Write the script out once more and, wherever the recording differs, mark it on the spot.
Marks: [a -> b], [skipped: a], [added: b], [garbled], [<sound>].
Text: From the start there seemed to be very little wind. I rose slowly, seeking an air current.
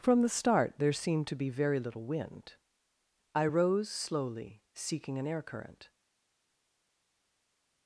From the start there seemed to be very little wind. I rose slowly, seeking an air current.